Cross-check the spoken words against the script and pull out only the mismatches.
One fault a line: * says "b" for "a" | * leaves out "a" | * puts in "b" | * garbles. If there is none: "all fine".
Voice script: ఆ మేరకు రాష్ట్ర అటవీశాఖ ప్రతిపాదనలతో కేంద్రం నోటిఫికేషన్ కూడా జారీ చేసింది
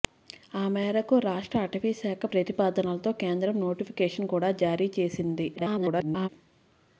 * garbles